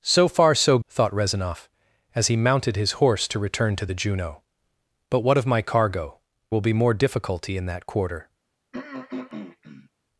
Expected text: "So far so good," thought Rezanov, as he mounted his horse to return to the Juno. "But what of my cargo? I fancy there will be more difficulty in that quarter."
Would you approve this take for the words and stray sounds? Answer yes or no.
no